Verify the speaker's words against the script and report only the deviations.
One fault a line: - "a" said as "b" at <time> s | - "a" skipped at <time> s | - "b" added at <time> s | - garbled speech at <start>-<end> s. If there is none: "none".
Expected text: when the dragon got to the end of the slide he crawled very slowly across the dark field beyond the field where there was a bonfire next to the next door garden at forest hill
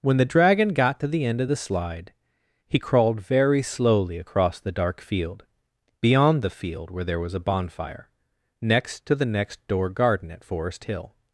none